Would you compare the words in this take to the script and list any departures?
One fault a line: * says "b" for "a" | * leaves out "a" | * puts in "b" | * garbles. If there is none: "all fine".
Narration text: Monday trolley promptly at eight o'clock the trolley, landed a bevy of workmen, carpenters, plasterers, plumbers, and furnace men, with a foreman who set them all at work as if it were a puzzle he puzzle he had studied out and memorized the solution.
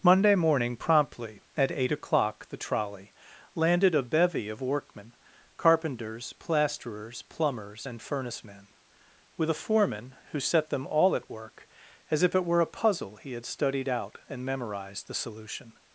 * says "morning" for "trolley"
* leaves out "puzzle he"